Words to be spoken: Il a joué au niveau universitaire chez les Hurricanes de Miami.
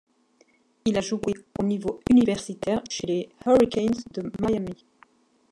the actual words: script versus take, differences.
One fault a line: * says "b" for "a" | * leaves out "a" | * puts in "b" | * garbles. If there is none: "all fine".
all fine